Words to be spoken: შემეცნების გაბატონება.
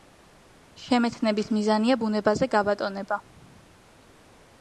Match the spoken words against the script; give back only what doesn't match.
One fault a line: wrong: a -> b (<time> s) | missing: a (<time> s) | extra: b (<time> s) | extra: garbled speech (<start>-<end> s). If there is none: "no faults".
extra: მიზანია ბუნებაზე (1.6 s)